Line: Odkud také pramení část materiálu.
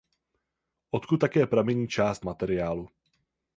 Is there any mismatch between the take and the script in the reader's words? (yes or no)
no